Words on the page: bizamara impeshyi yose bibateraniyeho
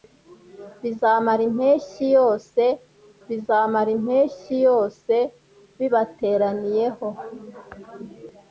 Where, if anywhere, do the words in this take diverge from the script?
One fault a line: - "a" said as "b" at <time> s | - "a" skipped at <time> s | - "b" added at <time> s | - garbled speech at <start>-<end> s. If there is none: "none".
- "bizamara impeshyi yose" added at 3.3 s